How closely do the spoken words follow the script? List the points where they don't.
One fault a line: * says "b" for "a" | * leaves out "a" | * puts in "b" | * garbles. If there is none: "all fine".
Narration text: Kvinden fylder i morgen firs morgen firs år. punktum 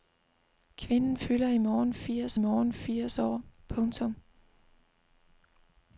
all fine